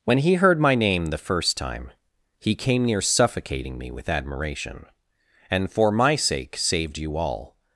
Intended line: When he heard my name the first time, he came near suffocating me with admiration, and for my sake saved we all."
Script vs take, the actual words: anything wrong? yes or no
yes